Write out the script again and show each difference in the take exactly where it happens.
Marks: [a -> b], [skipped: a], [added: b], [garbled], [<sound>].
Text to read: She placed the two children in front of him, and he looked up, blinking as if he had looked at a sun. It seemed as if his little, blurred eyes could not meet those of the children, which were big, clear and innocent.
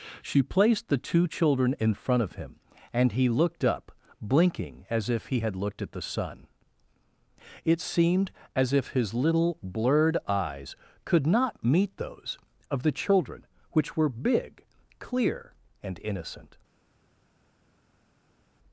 She placed the two children in front of him, and he looked up, blinking as if he had looked at [a -> the] sun. It seemed as if his little, blurred eyes could not meet those of the children, which were big, clear and innocent.